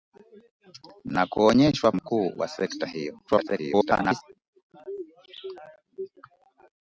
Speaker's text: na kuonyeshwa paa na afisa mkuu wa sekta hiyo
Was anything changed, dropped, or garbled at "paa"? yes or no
yes